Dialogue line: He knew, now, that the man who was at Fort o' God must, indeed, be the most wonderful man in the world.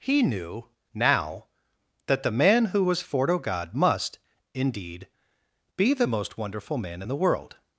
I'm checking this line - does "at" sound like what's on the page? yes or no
no